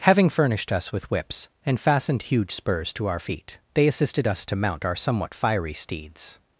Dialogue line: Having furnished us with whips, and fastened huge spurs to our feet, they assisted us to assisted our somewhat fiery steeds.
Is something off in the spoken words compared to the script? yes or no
yes